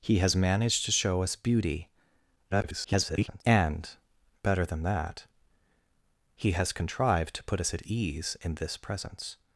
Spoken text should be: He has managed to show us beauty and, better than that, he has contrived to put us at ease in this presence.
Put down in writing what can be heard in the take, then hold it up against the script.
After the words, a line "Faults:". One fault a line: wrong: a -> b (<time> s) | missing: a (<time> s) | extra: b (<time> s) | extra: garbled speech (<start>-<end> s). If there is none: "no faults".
He has managed to show us beauty [garbled] and, better than that, he has contrived to put us at ease in this presence.
Faults:
extra: garbled speech (2.5-3.4 s)